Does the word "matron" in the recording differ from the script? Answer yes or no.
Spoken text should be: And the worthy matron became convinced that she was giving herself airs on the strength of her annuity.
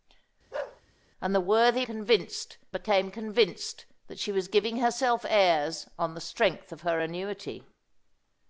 yes